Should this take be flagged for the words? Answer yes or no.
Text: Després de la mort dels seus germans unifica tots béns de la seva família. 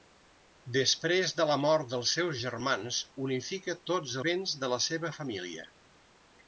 no